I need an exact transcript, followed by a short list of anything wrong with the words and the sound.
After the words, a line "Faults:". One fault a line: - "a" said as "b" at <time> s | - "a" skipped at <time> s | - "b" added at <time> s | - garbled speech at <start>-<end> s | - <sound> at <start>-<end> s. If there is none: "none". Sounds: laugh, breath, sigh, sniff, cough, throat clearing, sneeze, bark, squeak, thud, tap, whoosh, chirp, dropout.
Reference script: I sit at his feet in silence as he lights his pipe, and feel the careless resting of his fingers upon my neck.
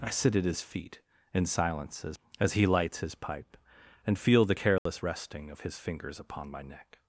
I sit at his feet in silence as as he lights his pipe, and feel the careless resting of his fingers upon my neck.
Faults:
- "as" added at 2.4 s
- dropout at 4.8-4.9 s